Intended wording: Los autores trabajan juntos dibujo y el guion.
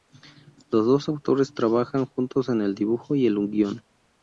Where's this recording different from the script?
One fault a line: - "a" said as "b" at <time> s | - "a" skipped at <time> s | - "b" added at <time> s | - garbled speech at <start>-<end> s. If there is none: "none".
- "dos" added at 0.9 s
- "en el" added at 2.5 s